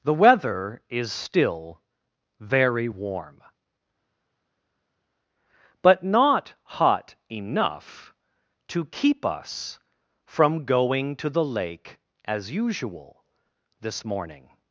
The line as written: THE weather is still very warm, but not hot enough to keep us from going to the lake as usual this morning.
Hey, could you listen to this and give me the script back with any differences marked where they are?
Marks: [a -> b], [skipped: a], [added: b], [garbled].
THE weather is still very warm, but not hot enough to keep us from going to the lake as usual this morning.